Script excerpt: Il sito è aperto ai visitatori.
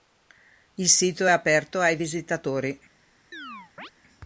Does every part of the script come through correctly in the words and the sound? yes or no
no